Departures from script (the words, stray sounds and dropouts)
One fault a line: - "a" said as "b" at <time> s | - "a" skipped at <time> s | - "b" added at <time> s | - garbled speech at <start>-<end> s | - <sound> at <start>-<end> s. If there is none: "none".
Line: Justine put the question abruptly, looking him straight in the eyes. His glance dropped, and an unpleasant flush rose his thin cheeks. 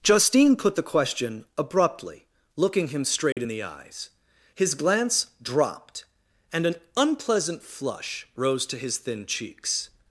- dropout at 3.3-3.4 s
- "to" added at 8.7 s